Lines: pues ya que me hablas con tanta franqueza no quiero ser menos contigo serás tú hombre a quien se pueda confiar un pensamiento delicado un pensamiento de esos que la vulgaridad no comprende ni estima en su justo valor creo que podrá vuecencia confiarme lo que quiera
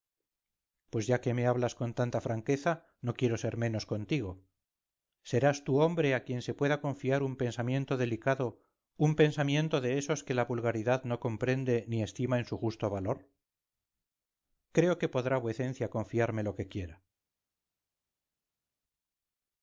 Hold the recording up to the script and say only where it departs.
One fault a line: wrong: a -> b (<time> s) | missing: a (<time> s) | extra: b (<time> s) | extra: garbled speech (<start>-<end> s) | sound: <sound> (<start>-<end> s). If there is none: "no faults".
no faults